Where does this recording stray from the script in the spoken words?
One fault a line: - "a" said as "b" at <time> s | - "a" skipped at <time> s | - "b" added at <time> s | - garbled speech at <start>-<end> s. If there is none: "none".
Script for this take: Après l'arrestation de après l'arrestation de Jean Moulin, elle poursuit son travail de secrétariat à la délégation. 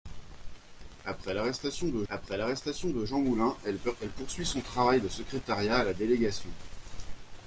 none